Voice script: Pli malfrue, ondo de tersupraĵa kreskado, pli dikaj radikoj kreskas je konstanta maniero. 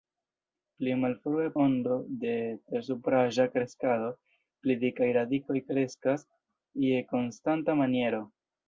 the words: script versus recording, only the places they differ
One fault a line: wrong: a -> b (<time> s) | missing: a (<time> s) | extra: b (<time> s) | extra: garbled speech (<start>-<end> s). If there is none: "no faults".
no faults